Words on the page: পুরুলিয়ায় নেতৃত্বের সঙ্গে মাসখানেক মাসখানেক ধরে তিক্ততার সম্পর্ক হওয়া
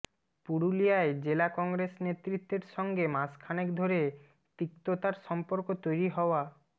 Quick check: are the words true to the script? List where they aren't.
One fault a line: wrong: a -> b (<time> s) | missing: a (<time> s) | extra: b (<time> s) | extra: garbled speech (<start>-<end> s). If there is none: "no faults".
extra: জেলা কংগ্রেস (1.2 s)
missing: মাসখানেক (3.7 s)
extra: তৈরি (5.8 s)